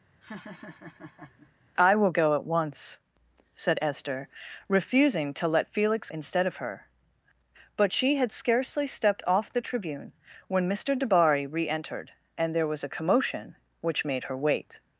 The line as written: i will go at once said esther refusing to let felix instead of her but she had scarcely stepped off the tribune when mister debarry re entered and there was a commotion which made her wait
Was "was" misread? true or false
false